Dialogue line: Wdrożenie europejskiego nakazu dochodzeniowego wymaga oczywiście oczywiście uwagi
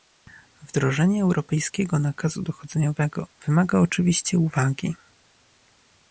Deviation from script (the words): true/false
true